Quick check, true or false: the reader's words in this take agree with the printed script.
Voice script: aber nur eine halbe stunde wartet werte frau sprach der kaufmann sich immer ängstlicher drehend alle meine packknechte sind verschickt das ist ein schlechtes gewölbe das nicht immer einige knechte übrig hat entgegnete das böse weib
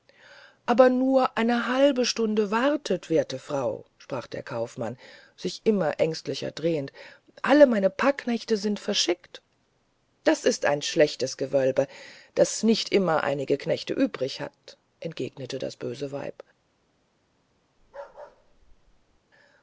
true